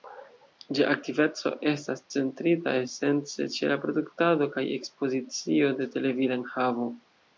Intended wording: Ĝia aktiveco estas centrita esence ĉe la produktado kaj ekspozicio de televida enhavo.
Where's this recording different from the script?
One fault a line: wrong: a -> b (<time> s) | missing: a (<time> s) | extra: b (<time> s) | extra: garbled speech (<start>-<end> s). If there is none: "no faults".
no faults